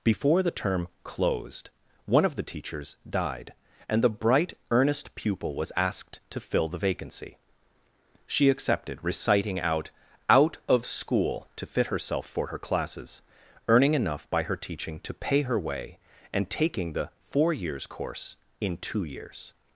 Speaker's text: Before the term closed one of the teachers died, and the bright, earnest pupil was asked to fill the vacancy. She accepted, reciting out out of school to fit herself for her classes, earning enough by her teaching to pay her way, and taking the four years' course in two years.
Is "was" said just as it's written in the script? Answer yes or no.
yes